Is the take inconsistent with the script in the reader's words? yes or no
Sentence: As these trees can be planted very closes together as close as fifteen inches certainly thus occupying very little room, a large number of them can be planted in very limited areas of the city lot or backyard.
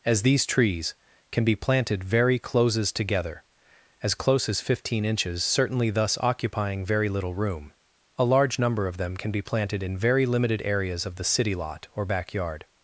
no